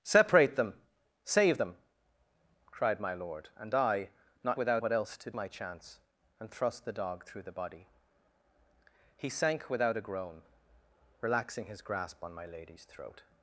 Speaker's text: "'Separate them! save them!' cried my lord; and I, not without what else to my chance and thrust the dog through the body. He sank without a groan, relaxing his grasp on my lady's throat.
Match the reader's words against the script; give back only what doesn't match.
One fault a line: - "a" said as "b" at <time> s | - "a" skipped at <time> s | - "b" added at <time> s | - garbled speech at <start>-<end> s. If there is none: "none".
none